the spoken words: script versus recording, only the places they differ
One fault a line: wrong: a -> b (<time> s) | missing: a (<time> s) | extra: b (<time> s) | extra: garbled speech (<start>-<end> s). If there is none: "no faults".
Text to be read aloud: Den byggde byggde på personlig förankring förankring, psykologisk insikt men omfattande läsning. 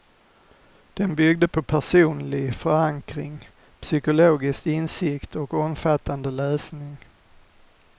missing: byggde (1.5 s)
missing: förankring (3.5 s)
wrong: men -> och (5.3 s)